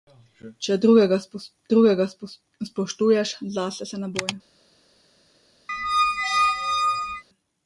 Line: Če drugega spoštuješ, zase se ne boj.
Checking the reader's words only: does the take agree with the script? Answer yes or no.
no